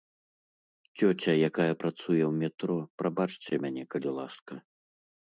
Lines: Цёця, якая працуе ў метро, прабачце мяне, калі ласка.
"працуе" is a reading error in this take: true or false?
false